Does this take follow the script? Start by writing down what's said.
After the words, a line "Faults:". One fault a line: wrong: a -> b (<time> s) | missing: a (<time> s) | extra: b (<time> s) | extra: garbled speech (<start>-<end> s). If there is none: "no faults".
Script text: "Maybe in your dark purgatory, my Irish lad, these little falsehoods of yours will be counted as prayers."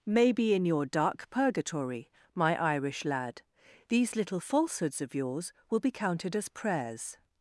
"Maybe in your dark purgatory, my Irish lad, these little falsehoods of yours will be counted as prayers."
Faults:
no faults